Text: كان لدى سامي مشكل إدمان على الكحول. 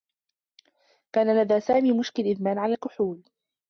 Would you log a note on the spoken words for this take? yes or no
no